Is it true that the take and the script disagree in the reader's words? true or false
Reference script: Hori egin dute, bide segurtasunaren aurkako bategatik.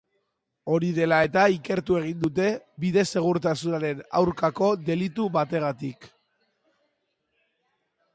true